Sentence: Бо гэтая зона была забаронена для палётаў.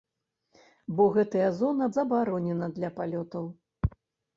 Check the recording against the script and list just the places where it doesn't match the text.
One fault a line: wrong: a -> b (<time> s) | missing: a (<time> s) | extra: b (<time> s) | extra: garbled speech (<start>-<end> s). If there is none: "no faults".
missing: была (1.9 s)